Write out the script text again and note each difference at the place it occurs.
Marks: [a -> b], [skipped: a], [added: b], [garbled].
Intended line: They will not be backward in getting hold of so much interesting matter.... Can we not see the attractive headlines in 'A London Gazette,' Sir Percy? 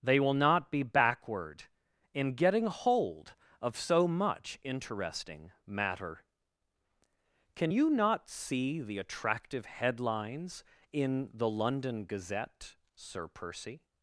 They will not be backward in getting hold of so much interesting matter.... Can [we -> you] not see the attractive headlines in ['A -> The] London Gazette,' Sir Percy?